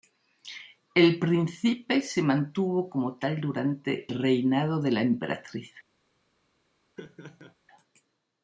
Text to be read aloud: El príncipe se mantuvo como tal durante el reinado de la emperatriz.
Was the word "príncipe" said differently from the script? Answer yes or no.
no